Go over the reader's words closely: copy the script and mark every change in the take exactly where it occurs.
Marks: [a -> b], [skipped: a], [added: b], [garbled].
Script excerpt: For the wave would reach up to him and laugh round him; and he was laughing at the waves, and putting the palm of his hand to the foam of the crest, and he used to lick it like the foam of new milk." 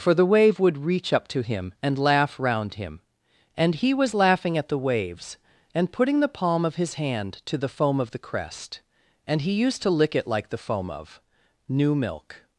For the wave would reach up to him and laugh round him; and he was laughing at the waves, and putting the palm of his hand to the foam of the crest, and he used to lick it like the foam of new milk."